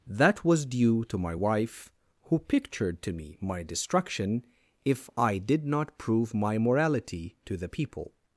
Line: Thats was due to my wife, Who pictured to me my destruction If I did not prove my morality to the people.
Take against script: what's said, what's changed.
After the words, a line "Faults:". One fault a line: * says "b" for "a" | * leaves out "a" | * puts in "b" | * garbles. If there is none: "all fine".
That was due to my wife, Who pictured to me my destruction If I did not prove my morality to the people.
Faults:
* says "That" for "Thats"